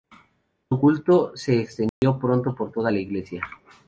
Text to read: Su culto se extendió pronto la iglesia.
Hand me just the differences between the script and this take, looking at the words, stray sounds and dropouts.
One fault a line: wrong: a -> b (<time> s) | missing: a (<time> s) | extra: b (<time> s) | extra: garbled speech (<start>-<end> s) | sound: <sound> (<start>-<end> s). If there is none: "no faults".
sound: dropout (1.9-2.0 s)
extra: por toda (2.5 s)